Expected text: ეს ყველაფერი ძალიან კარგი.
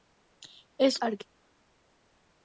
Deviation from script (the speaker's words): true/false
true